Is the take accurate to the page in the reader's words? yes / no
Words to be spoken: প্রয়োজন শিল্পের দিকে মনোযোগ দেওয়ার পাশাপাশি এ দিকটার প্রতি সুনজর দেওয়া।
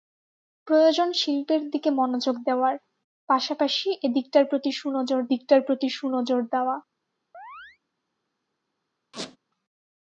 no